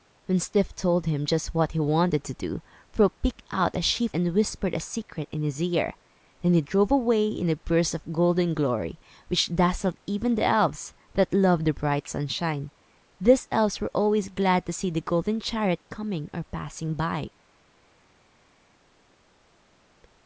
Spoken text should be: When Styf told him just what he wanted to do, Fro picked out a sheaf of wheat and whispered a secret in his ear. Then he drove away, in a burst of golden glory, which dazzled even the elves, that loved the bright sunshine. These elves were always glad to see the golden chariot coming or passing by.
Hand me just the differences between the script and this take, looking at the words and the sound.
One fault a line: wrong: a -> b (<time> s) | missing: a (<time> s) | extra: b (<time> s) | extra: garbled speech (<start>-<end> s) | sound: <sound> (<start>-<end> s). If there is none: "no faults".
missing: of wheat (4.2 s)